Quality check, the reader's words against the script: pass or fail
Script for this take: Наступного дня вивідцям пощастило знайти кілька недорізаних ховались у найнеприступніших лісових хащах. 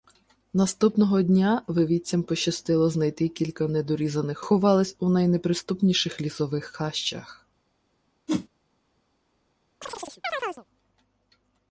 pass